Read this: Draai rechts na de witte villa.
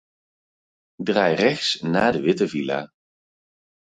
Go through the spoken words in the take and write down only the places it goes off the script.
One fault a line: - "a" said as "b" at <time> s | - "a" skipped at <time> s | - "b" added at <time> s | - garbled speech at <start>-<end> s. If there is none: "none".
none